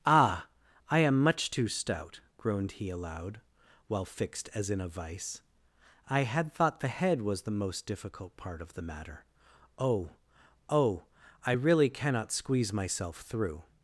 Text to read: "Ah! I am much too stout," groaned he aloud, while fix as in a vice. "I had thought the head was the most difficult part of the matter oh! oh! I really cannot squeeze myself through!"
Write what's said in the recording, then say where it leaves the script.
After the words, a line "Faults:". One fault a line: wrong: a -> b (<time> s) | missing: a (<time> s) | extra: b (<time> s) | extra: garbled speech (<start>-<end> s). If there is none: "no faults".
"Ah! I am much too stout," groaned he aloud, while fixed as in a vice. "I had thought the head was the most difficult part of the matter oh! oh! I really cannot squeeze myself through!"
Faults:
wrong: fix -> fixed (4.1 s)